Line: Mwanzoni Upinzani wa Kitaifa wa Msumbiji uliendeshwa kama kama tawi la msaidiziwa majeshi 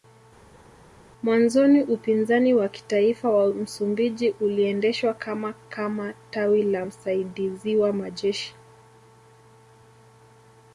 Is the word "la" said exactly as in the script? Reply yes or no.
yes